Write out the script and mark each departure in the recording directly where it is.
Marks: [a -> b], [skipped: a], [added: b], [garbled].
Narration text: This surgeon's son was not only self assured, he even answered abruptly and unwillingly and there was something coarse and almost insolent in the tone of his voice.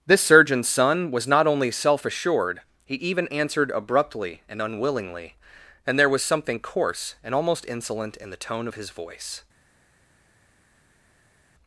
This surgeon's son was not only self assured, he even answered abruptly and unwillingly and there was something coarse and almost insolent in the tone of his voice.